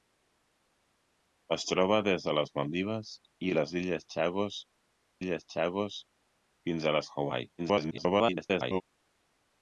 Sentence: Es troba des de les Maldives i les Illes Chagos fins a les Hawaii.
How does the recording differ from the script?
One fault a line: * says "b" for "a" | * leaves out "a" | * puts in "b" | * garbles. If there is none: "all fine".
* puts in "Illes Chagos"
* garbles